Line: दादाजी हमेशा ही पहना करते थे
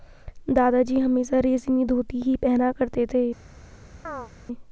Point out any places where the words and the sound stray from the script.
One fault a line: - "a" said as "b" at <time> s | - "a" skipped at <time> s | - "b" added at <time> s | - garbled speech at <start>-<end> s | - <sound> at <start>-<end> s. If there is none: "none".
- "रेशमी धोती" added at 1.4 s
- chirp at 4.0-4.3 s